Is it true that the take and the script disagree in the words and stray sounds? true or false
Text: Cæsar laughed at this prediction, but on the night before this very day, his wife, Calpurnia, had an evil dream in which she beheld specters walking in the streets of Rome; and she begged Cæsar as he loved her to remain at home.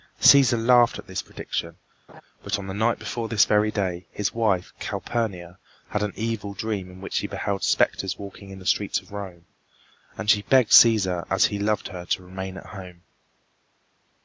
true